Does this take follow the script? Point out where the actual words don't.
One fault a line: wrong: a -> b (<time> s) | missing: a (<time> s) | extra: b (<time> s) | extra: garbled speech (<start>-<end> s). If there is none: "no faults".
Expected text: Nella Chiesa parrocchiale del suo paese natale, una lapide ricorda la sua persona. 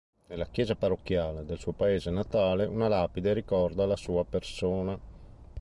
no faults